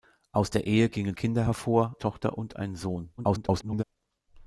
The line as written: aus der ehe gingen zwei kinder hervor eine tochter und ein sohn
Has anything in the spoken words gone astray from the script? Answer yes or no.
yes